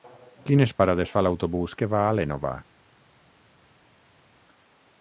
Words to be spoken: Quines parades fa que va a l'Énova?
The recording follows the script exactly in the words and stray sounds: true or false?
false